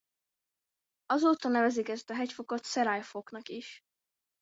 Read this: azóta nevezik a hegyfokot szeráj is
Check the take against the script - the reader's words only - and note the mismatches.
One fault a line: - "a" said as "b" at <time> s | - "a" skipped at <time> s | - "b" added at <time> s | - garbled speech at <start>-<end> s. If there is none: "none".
- "ezt" added at 1.9 s
- "foknak" added at 3.0 s